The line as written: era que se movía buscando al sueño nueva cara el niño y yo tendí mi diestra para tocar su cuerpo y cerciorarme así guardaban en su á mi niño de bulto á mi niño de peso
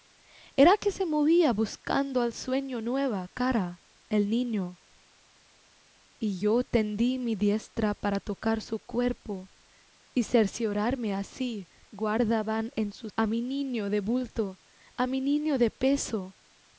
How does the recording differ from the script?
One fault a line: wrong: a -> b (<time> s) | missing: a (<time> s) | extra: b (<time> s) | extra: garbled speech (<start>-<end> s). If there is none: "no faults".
no faults